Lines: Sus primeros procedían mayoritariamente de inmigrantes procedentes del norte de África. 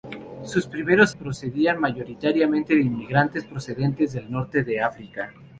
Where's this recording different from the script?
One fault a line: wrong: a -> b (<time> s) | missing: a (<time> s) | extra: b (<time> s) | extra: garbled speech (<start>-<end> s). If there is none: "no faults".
no faults